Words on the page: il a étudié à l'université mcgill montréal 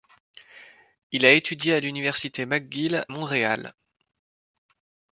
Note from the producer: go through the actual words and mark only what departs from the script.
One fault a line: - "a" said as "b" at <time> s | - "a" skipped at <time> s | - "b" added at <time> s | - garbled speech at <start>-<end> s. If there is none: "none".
none